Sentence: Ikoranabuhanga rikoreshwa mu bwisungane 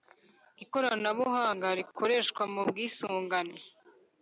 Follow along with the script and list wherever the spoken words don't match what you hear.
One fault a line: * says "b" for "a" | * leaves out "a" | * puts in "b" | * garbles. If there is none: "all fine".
all fine